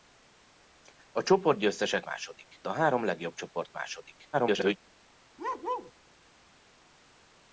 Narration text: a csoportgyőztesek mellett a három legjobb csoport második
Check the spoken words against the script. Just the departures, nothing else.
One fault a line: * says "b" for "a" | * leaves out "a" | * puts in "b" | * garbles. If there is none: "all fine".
* says "második" for "mellett"
* garbles